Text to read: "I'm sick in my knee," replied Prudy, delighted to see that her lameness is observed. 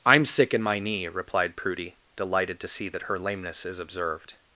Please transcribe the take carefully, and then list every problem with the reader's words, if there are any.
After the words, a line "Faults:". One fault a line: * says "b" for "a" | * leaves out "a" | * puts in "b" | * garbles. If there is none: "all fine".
"I'm sick in my knee," replied Prudy, delighted to see that her lameness is observed.
Faults:
all fine